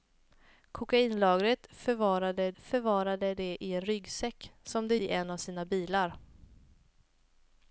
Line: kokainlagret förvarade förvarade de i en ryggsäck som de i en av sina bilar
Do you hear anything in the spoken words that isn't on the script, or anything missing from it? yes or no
no